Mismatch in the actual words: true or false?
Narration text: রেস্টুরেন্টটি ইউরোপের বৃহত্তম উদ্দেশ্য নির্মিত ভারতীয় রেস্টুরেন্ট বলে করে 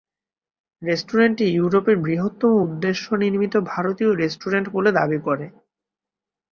true